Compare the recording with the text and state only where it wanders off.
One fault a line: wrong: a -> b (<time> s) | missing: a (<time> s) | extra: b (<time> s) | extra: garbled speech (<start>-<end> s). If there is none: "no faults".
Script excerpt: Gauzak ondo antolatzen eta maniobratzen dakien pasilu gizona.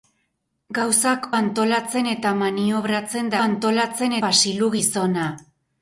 missing: ondo (1.3 s)
wrong: dakien -> antolatzen (3.4 s)